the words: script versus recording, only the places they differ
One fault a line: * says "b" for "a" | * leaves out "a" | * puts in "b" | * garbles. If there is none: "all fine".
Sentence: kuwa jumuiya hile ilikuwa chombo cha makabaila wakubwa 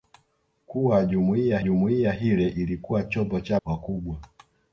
* puts in "jumuiya"
* leaves out "makabaila"